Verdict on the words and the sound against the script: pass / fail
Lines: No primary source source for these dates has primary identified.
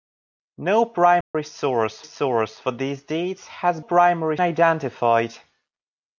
fail